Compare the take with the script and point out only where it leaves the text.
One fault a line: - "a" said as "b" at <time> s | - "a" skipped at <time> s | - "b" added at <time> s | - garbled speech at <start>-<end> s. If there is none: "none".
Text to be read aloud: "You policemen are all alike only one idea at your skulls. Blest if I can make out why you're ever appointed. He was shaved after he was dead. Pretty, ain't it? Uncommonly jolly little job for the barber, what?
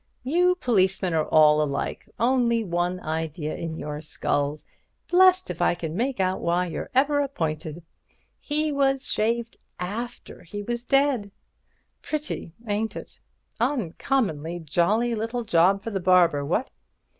- "at" said as "in" at 3.5 s